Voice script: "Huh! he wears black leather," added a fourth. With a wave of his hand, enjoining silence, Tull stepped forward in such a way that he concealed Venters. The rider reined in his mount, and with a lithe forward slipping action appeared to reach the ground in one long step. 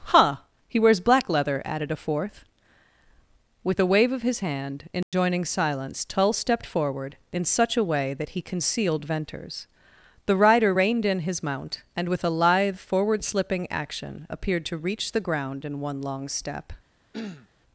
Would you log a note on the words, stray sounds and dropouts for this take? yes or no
yes